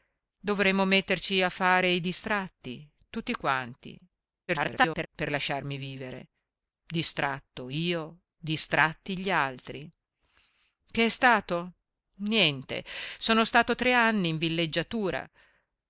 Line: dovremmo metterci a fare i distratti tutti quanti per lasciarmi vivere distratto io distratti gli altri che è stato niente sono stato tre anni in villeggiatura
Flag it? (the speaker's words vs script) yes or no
yes